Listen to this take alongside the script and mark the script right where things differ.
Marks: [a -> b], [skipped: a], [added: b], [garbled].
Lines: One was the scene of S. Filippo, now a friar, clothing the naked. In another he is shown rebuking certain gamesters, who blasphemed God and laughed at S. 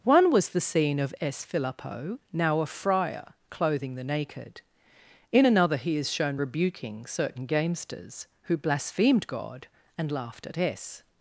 One was the scene of S. Filippo, now a friar, clothing the naked. In another he is shown rebuking certain gamesters, who blasphemed God and laughed at S.